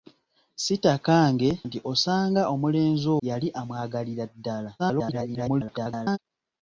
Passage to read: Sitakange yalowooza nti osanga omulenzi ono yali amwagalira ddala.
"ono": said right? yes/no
no